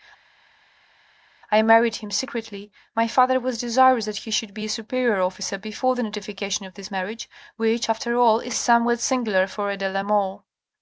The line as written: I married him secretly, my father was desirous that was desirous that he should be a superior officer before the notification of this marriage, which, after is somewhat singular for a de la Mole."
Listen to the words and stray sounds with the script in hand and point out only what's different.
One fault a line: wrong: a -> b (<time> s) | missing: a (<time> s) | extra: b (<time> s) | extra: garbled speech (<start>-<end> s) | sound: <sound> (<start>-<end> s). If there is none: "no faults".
missing: was desirous that (4.2 s)
extra: all (8.2 s)